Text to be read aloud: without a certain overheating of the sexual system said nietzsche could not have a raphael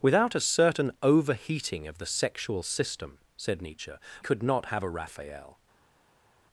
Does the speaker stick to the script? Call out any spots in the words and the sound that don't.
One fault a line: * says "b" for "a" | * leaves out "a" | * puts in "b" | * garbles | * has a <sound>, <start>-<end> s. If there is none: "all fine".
all fine